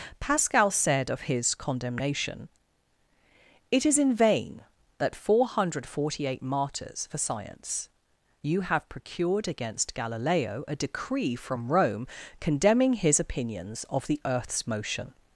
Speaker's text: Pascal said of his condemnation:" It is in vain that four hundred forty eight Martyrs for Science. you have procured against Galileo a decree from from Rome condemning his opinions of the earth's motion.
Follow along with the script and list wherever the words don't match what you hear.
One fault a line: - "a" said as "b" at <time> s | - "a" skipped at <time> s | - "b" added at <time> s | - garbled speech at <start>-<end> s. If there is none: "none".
- "from" skipped at 11.7 s